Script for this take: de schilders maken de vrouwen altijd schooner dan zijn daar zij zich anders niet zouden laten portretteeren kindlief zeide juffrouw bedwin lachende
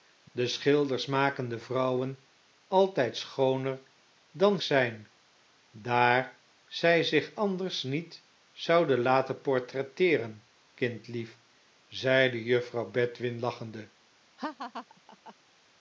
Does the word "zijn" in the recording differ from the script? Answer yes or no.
no